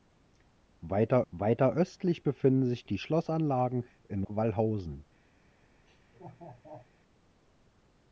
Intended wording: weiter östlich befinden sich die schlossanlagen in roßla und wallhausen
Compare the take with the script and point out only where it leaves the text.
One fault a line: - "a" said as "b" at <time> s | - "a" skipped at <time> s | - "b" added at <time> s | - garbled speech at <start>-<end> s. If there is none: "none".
- "weiter" added at 1.3 s
- "roßla und" skipped at 4.2 s